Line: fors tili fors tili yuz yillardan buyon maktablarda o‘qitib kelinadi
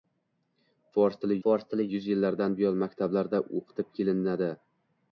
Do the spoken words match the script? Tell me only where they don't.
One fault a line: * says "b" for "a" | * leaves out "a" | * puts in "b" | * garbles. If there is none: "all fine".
all fine